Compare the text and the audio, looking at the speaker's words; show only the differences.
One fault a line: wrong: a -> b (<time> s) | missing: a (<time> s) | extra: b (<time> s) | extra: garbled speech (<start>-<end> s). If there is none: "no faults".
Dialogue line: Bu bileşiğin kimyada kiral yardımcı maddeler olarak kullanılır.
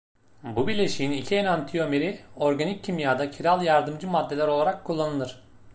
extra: iki enantiyomeri organik (1.1 s)